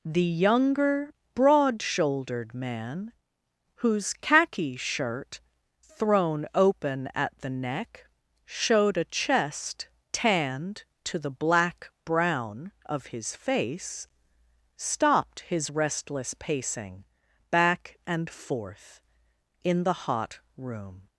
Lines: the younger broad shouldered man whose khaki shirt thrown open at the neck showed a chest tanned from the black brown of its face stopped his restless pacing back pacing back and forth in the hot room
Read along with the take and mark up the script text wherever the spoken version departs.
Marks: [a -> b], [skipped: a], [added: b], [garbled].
the younger broad shouldered man whose khaki shirt thrown open at the neck showed a chest tanned [from -> to] the black brown of [its -> his] face stopped his restless pacing back [skipped: pacing back] and forth in the hot room